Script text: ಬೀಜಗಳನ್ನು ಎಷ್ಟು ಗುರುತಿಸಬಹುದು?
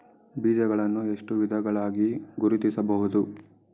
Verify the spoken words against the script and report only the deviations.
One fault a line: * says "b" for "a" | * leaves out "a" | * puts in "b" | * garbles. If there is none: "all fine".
* puts in "ವಿಧಗಳಾಗಿ"